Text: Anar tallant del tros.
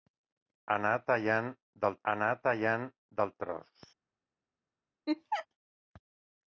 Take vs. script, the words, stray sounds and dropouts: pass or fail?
fail